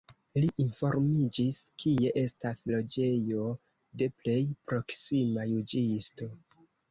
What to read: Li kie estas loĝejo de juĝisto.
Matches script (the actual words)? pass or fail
fail